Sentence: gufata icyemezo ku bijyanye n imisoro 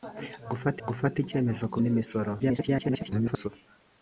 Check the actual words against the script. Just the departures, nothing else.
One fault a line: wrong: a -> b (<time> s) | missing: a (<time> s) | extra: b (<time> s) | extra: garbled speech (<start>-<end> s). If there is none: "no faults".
extra: gufata (0.9 s)
missing: bijyanye (1.8 s)
extra: garbled speech (2.4-3.5 s)